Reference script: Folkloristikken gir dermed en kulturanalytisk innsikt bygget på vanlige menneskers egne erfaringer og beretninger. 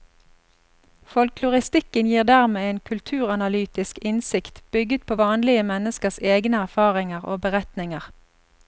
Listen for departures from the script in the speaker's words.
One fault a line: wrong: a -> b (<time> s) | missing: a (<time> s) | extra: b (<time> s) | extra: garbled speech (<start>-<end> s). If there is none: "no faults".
no faults